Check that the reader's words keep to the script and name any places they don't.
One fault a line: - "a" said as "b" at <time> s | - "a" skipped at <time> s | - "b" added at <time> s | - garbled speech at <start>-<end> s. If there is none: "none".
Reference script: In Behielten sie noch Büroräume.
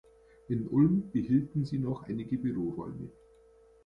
- "Ulm" added at 0.7 s
- "einige" added at 2.0 s